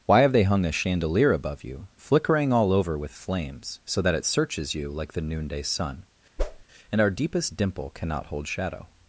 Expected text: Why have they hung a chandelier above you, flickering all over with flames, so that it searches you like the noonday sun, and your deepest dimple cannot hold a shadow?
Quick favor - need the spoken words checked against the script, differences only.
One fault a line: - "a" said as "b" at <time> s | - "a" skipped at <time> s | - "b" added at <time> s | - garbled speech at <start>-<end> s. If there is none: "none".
- "your" said as "our" at 7.0 s
- "a" skipped at 8.5 s